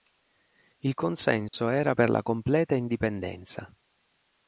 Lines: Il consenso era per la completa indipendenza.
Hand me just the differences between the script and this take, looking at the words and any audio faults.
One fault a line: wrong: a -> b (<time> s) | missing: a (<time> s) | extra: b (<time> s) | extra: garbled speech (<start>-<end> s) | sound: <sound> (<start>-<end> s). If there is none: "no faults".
sound: dropout (1.5-1.5 s)